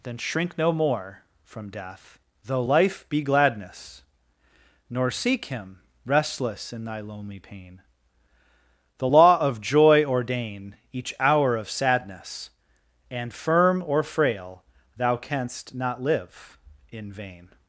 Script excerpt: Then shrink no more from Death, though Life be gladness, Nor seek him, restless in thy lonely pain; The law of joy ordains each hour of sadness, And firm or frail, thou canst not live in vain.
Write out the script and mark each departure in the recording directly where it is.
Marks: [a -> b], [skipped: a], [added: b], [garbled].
Then shrink no more from Death, though Life be gladness, Nor seek him, restless in thy lonely pain; The law of joy [ordains -> ordain] each hour of sadness, And firm or frail, thou canst not live in vain.